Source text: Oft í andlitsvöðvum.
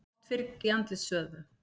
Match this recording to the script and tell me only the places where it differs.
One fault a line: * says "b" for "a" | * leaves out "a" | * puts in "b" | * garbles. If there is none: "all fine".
all fine